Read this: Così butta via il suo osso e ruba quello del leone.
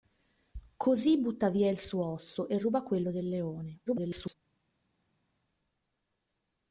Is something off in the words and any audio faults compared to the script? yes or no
yes